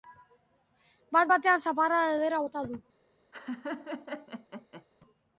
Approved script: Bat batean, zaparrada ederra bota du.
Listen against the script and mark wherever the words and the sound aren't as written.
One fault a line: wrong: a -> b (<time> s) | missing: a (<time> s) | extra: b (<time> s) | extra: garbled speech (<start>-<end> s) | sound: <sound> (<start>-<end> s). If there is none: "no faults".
sound: laugh (3.3-4.9 s)